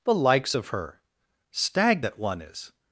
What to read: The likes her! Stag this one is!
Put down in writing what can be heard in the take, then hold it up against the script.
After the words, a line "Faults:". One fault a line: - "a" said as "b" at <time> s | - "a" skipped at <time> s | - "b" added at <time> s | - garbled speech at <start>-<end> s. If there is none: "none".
The likes of her! Stag that one is!
Faults:
- "of" added at 0.5 s
- "this" said as "that" at 2.0 s